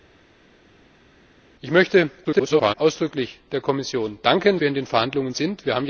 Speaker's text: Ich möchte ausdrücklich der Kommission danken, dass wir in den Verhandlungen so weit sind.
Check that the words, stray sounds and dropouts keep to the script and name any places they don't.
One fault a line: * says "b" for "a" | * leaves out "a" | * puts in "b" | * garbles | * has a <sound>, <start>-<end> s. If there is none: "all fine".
* garbles
* leaves out "dass"
* leaves out "so weit"